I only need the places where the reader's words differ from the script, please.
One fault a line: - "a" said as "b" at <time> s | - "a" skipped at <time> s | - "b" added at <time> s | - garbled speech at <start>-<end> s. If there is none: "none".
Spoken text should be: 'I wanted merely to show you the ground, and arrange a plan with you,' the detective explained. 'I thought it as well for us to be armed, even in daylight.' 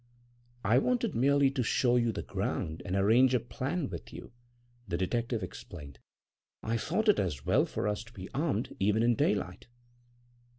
none